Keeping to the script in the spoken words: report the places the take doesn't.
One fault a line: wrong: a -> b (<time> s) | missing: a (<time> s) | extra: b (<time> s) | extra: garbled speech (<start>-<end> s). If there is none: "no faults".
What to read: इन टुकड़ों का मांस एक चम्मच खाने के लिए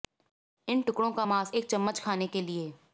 no faults